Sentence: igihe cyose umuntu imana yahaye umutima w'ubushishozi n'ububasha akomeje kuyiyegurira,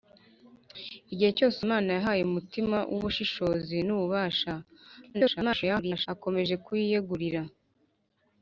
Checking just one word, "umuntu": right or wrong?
wrong